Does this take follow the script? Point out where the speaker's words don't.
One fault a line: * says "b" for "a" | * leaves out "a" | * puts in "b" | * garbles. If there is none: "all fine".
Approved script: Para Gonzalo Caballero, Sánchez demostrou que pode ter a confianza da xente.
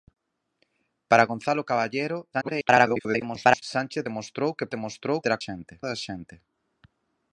* garbles
* says "demostrou" for "pode"
* says "xente" for "confianza"